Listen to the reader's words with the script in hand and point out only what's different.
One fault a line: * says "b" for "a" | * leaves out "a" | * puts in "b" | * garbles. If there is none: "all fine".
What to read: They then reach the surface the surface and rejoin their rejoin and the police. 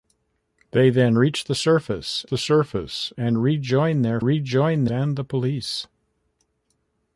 all fine